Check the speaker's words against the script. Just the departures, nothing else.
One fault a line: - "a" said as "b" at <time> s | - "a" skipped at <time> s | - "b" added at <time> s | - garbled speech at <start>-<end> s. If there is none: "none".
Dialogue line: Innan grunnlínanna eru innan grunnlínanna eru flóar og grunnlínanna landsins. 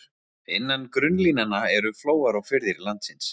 - "innan grunnlínanna eru" skipped at 1.9 s
- "grunnlínanna" said as "firðir" at 2.5 s